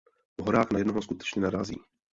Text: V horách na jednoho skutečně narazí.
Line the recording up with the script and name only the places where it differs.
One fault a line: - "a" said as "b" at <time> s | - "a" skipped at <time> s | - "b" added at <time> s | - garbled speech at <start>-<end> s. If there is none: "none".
none